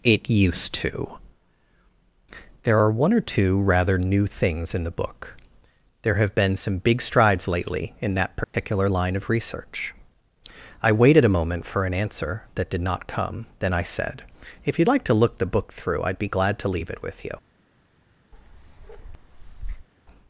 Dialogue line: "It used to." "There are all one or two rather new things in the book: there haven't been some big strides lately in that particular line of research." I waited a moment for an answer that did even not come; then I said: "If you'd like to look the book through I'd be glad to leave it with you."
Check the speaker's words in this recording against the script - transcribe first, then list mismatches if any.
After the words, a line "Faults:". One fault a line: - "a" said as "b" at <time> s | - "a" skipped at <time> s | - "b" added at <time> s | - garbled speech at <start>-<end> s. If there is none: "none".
"It used to." "There are one or two rather new things in the book: there have been some big strides lately in that particular line of research." I waited a moment for an answer that did not come; then I said: "If you'd like to look the book through I'd be glad to leave it with you."
Faults:
- "all" skipped at 2.9 s
- "haven't" said as "have" at 6.2 s
- "even" skipped at 12.8 s